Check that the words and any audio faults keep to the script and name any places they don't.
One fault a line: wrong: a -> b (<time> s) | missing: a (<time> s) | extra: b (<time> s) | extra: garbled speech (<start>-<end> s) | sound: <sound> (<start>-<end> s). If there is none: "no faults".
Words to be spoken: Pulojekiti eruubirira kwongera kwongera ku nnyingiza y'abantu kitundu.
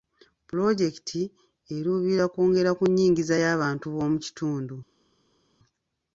missing: kwongera (2.7 s)
extra: b'omu (3.9 s)